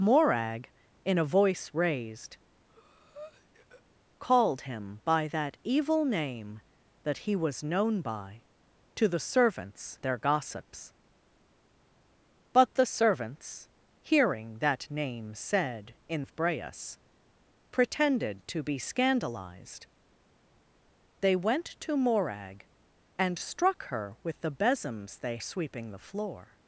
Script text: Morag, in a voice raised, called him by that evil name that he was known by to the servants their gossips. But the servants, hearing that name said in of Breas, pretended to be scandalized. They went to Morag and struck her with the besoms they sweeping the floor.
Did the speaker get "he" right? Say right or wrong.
right